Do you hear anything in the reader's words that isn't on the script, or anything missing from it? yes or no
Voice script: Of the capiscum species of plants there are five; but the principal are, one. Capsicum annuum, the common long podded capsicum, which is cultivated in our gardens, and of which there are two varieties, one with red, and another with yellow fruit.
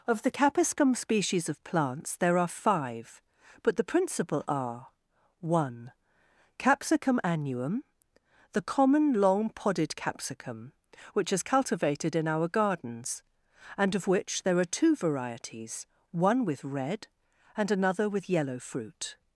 no